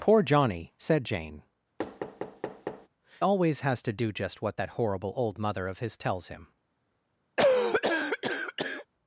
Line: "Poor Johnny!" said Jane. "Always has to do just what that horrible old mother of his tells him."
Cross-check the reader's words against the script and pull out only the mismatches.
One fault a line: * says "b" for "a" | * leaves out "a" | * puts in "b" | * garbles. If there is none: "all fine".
all fine